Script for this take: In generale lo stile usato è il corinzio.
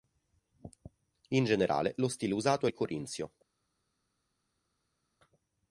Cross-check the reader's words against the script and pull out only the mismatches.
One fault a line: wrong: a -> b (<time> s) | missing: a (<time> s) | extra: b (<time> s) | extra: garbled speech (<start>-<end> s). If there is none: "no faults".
no faults